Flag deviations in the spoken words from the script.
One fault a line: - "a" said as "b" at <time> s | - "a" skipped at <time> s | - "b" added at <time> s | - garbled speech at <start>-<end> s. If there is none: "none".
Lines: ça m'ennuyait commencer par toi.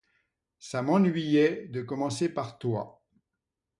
- "de" added at 1.7 s